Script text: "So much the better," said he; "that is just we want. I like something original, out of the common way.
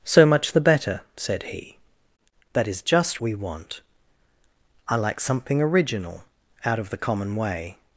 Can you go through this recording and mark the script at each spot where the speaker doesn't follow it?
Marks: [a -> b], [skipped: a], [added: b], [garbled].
"So much the better," said he; "that is just we want. I like something original, out of the common way.